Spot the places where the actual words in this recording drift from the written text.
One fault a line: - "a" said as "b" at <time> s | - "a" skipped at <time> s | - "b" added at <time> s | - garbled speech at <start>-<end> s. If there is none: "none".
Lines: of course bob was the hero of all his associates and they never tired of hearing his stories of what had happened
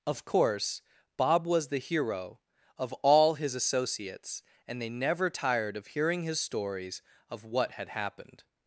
none